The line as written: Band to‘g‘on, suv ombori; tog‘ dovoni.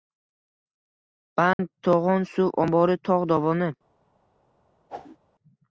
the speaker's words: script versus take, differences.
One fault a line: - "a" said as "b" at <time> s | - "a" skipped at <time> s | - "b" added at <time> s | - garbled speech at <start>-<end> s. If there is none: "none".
none